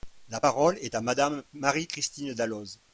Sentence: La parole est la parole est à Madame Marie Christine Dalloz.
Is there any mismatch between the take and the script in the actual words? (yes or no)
yes